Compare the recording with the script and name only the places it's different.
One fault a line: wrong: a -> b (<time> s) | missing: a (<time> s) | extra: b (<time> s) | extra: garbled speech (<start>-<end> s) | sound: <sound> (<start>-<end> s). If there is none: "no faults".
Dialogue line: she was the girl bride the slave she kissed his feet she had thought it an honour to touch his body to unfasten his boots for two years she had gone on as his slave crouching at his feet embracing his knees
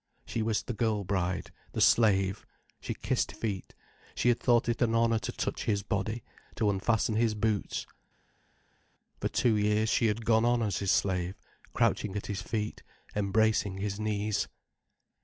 missing: his (3.3 s)